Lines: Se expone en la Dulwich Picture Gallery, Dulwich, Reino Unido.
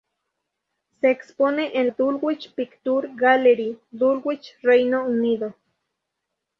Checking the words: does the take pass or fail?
fail